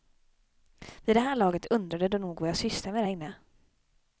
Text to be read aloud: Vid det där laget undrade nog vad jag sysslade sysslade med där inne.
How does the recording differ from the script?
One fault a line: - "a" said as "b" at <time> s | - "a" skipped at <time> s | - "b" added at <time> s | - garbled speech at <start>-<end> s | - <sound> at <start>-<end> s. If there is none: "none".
- "där" said as "här" at 1.2 s
- "de" added at 2.1 s
- "sysslade" skipped at 2.9 s